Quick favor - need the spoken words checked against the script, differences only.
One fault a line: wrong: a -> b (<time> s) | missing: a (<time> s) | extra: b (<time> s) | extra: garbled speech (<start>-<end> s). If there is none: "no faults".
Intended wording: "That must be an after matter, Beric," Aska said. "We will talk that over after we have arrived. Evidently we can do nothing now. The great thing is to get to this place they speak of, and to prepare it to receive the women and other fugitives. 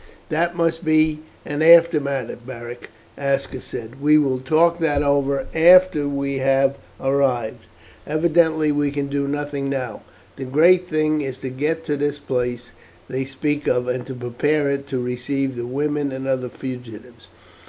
no faults